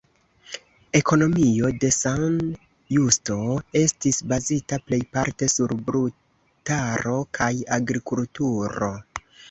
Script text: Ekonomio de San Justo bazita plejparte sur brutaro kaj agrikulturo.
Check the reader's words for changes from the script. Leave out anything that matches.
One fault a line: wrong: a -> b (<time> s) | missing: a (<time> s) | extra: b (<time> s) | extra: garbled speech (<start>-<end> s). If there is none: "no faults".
extra: estis (3.8 s)